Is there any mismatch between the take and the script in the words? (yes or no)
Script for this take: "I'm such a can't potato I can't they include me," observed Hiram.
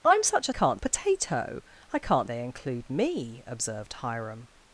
no